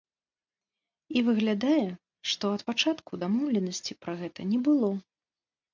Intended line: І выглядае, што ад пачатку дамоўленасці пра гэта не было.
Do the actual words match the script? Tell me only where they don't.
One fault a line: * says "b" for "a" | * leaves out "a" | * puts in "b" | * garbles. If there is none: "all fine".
all fine